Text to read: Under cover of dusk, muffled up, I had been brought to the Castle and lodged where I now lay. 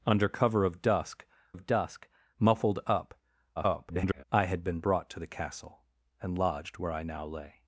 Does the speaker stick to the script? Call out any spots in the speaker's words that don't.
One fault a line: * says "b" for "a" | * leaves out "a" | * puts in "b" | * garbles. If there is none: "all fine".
* puts in "of dusk"
* garbles